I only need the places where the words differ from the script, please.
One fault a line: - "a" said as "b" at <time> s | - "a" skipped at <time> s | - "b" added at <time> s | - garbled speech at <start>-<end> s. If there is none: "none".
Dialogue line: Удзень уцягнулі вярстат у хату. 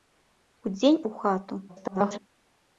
- "уцягнулі вярстат" skipped at 1.0 s
- garbled speech at 1.7-2.2 s